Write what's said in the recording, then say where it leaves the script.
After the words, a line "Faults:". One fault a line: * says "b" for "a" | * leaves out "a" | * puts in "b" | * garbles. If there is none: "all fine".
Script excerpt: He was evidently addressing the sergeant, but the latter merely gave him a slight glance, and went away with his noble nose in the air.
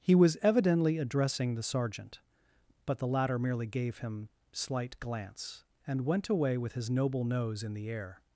He was evidently addressing the sergeant, but the latter merely gave him slight glance, and went away with his noble nose in the air.
Faults:
* leaves out "a"